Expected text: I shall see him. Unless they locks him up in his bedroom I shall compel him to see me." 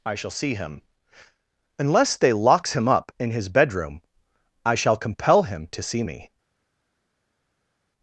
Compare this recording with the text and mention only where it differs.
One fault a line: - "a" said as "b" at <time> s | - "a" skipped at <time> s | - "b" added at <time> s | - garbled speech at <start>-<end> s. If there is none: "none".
none